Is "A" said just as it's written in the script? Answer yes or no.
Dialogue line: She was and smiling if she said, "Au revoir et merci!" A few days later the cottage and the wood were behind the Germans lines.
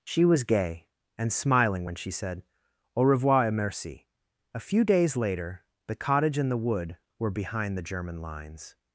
yes